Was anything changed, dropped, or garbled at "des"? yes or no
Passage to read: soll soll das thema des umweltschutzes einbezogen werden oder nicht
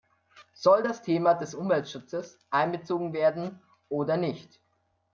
no